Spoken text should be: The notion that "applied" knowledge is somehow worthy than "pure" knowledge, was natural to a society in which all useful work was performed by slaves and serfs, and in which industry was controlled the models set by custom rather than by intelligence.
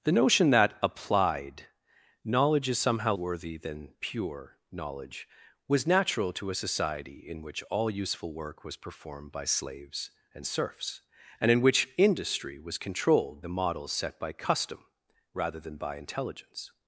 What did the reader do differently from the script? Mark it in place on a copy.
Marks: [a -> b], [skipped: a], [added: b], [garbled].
The notion that "applied" knowledge is somehow worthy than "pure" knowledge, was natural to a society in which all useful work was performed by slaves and serfs, and in which industry was controlled the models set by custom rather than by intelligence.